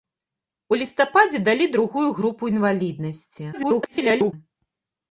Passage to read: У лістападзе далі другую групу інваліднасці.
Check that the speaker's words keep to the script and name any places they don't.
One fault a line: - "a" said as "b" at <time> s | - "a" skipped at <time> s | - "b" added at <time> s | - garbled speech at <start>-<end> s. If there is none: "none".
- garbled speech at 3.5-4.3 s